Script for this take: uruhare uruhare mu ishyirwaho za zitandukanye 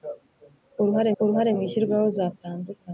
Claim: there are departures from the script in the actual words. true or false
false